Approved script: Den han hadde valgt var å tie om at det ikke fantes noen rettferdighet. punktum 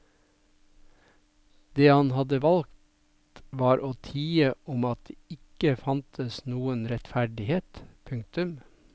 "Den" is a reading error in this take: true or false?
true